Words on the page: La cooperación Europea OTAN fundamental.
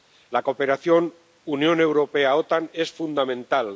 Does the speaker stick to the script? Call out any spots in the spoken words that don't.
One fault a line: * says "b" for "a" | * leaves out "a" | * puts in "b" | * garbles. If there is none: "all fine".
* puts in "Unión"
* puts in "es"